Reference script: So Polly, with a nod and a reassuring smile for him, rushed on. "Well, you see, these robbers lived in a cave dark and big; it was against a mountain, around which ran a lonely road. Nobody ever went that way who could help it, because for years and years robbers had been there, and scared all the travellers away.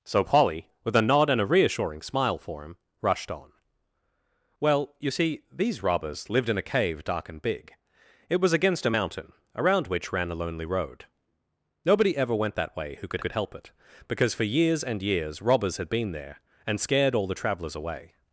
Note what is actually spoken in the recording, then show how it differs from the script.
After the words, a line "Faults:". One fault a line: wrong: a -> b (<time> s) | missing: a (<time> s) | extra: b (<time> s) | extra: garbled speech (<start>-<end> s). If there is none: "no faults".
So Polly, with a nod and a reassuring smile for him, rushed on. "Well, you see, these robbers lived in a cave dark and big; it was against a mountain, around which ran a lonely road. Nobody ever went that way who could could help it, because for years and years robbers had been there, and scared all the travellers away.
Faults:
extra: could (13.2 s)